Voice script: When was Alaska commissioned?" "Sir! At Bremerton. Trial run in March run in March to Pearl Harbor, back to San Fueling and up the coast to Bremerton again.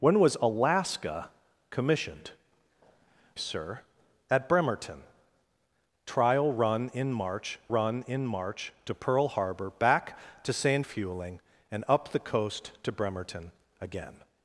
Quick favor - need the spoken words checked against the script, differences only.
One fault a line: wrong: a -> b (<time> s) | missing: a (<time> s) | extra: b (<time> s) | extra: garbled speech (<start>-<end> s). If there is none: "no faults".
no faults